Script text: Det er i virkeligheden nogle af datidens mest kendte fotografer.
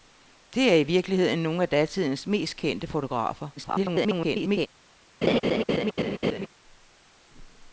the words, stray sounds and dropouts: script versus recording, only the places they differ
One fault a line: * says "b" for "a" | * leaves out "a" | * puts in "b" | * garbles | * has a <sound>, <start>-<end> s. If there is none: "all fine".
* garbles
* has a laugh, 5.2-6.5 s